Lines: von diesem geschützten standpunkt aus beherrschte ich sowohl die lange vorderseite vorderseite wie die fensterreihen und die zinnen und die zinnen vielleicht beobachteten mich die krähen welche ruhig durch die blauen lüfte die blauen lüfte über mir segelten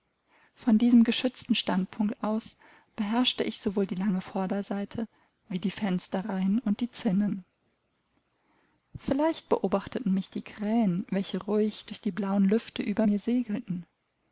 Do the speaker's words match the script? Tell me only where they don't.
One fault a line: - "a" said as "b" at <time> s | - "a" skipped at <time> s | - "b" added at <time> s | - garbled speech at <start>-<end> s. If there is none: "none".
- "vorderseite" skipped at 5.1 s
- "und die zinnen" skipped at 7.4 s
- "die blauen lüfte" skipped at 12.8 s